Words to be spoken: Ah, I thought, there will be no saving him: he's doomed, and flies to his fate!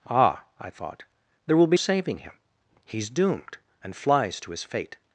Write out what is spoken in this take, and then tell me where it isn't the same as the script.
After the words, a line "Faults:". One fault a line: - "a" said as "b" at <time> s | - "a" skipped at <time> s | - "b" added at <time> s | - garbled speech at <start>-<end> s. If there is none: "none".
Ah, I thought, there will be saving him: he's doomed, and flies to his fate!
Faults:
- "no" skipped at 1.8 s